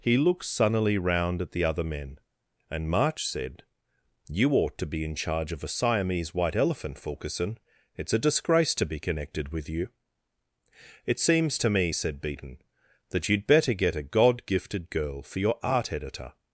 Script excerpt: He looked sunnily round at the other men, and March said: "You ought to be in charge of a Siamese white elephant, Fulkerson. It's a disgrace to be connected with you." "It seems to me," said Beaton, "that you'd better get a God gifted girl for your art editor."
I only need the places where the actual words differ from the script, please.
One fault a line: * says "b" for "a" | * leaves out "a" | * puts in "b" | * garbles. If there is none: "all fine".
all fine